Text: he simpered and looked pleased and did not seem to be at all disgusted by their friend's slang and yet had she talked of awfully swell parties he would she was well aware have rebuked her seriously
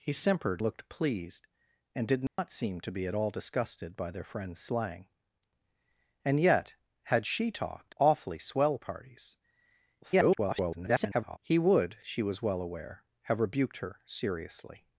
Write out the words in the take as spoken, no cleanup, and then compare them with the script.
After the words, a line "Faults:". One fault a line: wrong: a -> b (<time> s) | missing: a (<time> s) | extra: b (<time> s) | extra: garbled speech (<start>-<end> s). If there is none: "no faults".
he simpered looked pleased and did not seem to be at all disgusted by their friend's slang and yet had she talked awfully swell parties [garbled] he would she was well aware have rebuked her seriously
Faults:
missing: and (0.6 s)
missing: of (7.9 s)
extra: garbled speech (10.0-11.4 s)